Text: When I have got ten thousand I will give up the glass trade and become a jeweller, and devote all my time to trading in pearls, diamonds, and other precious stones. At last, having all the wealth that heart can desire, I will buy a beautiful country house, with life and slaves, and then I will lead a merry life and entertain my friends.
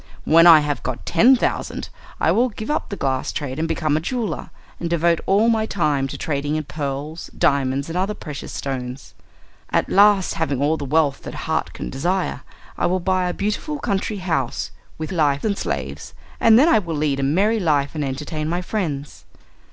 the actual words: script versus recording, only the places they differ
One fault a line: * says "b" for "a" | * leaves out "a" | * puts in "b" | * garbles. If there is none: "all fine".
all fine